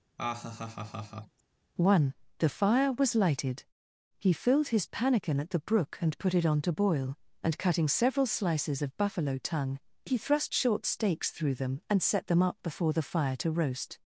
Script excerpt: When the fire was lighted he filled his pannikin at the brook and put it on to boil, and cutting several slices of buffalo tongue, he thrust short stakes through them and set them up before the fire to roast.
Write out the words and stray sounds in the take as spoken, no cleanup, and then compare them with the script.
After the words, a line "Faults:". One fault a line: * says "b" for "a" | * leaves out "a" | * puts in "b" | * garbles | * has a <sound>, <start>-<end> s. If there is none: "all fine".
One the fire was lighted he filled his pannikin at the brook and put it on to boil, and cutting several slices of buffalo tongue, he thrust short stakes through them and set them up before the fire to roast.
Faults:
* has a laugh, 0.2-1.4 s
* says "One" for "When"